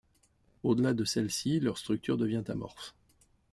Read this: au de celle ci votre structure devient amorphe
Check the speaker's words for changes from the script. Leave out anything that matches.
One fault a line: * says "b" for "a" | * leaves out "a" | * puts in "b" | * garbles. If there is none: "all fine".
* puts in "delà"
* says "leur" for "votre"